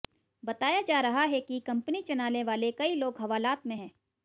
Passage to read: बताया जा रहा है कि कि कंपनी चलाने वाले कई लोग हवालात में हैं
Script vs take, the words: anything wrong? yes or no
yes